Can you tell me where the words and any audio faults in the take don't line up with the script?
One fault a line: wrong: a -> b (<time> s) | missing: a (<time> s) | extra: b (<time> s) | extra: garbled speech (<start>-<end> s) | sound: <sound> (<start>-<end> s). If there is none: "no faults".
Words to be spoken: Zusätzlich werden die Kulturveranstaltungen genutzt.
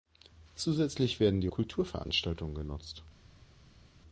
no faults